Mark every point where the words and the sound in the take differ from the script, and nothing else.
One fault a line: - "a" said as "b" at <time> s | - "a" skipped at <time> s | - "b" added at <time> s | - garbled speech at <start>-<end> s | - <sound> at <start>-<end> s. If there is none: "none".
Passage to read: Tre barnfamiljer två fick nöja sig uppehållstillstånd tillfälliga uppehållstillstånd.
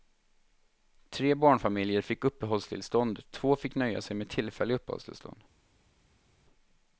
- "fick uppehållstillstånd" added at 2.0 s
- "uppehållstillstånd" said as "med" at 4.2 s